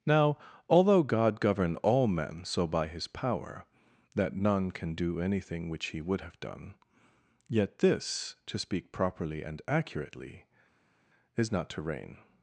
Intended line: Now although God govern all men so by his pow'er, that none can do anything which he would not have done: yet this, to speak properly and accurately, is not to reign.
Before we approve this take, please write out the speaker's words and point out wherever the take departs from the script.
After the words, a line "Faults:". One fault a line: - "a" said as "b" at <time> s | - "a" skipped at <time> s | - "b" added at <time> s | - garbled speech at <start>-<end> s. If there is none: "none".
Now although God govern all men so by his pow'er, that none can do anything which he would have done: yet this, to speak properly and accurately, is not to reign.
Faults:
- "not" skipped at 6.2 s